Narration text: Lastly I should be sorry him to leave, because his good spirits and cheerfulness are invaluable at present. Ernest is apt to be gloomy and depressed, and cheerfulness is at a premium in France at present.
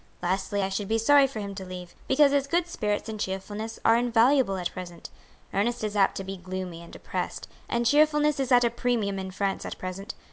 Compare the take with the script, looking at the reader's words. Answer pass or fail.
fail